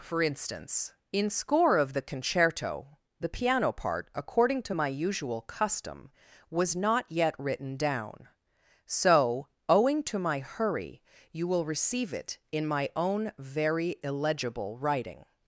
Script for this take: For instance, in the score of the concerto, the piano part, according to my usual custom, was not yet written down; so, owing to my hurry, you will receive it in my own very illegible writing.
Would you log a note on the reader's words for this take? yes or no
yes